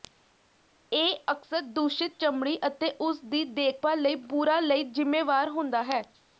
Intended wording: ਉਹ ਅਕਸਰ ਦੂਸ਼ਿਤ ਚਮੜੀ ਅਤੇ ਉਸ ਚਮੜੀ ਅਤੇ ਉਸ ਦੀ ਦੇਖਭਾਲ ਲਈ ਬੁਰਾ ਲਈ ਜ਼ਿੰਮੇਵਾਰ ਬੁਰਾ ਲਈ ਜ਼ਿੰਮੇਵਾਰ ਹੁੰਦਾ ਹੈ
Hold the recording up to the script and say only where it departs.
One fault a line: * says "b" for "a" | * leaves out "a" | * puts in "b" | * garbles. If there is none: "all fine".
* says "ਇਹ" for "ਉਹ"
* leaves out "ਚਮੜੀ ਅਤੇ ਉਸ"
* leaves out "ਬੁਰਾ ਲਈ ਜ਼ਿੰਮੇਵਾਰ"